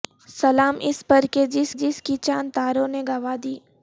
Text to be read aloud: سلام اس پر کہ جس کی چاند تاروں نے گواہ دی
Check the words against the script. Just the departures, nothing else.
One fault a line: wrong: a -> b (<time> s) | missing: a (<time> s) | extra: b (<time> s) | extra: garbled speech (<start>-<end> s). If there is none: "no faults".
extra: جس (1.7 s)